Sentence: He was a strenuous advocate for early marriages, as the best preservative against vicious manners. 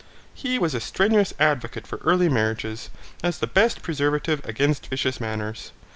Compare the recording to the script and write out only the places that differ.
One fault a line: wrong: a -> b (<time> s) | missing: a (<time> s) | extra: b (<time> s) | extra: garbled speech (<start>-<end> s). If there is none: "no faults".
no faults